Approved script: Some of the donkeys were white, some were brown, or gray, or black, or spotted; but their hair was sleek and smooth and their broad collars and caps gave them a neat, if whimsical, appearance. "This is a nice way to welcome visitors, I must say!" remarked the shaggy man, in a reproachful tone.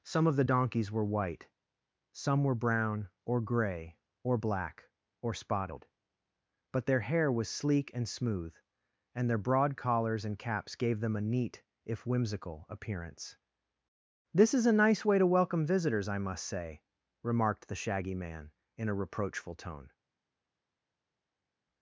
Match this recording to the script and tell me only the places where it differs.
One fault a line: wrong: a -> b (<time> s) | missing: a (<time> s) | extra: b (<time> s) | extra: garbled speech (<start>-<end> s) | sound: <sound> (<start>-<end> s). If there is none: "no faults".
no faults